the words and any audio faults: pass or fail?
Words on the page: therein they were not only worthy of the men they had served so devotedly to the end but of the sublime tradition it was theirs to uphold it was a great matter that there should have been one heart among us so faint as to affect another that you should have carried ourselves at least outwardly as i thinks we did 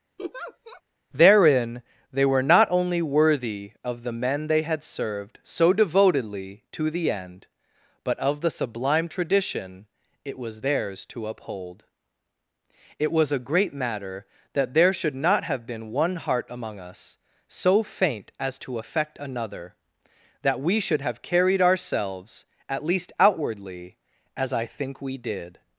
fail